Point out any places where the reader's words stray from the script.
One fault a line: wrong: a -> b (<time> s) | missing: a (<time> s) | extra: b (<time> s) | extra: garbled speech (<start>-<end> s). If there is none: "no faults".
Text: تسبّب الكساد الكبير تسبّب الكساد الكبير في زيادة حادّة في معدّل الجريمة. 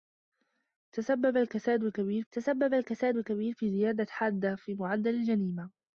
no faults